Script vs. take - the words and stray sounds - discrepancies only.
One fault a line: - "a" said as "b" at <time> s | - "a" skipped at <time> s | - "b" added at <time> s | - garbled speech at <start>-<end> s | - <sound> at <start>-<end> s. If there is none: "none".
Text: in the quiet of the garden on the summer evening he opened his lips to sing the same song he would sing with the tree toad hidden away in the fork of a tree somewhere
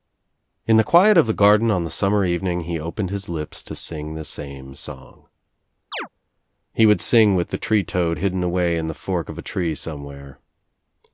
- chirp at 5.9-6.1 s